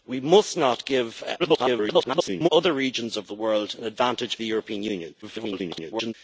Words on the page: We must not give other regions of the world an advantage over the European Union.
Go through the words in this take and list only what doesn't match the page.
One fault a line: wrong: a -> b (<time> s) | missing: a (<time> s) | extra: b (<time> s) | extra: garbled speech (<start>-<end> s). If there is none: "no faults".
extra: garbled speech (1.4-2.5 s)
missing: over (4.4 s)
extra: garbled speech (5.2-6.1 s)